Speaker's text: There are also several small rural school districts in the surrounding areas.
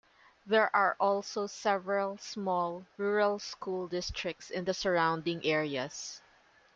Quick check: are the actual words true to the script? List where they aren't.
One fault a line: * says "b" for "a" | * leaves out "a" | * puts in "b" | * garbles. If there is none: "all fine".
all fine